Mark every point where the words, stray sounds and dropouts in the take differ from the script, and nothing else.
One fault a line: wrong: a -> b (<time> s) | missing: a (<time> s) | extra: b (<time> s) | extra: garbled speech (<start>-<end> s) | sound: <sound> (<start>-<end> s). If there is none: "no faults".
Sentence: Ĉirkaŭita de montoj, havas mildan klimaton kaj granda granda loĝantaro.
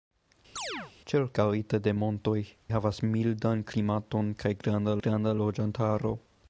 sound: chirp (0.6-0.9 s)